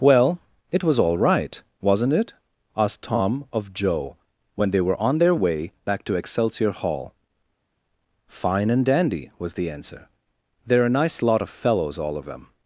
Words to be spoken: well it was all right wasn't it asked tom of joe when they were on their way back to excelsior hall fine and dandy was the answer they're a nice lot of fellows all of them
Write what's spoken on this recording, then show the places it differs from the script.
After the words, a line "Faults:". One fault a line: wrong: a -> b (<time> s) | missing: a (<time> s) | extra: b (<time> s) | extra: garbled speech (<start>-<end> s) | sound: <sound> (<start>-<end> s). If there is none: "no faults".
well it was all right wasn't it asked tom of joe when they were on their way back to excelsior hall fine and dandy was the answer they're a nice lot of fellows all of them
Faults:
no faults